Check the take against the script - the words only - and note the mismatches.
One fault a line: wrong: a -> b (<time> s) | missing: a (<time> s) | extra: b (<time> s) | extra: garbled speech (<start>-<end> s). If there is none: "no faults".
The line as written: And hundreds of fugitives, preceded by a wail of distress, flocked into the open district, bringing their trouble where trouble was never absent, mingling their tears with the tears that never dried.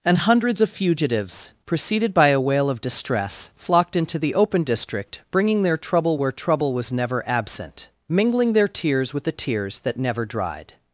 no faults